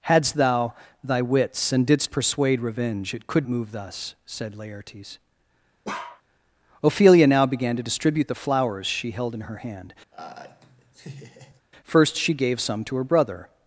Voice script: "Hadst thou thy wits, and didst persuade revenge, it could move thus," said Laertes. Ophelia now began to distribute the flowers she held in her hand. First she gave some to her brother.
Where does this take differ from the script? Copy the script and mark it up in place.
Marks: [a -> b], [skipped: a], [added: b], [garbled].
"Hadst thou thy wits, and didst persuade revenge, it could move thus," said Laertes. Ophelia now began to distribute the flowers she held in her hand. First she gave some to her brother.